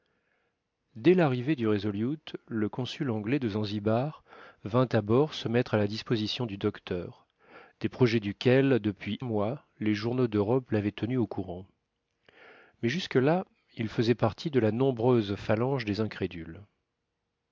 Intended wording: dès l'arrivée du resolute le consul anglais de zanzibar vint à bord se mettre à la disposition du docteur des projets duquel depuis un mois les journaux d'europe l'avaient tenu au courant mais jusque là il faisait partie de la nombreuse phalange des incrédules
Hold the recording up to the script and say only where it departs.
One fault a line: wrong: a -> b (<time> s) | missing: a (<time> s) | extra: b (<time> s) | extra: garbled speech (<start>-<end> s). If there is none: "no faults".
missing: un (9.2 s)